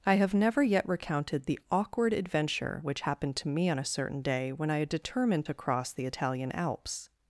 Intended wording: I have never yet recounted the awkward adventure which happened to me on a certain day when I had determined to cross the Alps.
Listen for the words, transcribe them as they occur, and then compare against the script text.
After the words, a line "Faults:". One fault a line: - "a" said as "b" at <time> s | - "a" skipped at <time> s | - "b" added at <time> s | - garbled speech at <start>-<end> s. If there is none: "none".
I have never yet recounted the awkward adventure which happened to me on a certain day when I had determined to cross the Italian Alps.
Faults:
- "Italian" added at 6.1 s